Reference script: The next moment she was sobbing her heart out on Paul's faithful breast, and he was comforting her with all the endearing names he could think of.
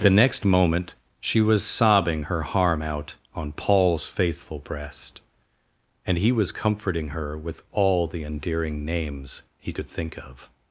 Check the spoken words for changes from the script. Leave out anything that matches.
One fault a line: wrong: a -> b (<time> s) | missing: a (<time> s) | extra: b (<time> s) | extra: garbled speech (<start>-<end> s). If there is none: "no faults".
wrong: heart -> harm (2.4 s)